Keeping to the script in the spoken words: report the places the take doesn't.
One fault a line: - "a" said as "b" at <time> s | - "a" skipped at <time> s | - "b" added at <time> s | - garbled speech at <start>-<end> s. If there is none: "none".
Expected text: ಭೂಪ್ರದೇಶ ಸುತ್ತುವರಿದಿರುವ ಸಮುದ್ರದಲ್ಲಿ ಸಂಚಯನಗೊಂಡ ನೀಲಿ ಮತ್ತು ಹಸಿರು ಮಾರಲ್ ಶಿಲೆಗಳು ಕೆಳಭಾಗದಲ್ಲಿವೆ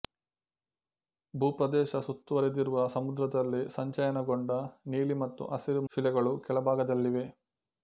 - "ಮಾರಲ್" skipped at 5.8 s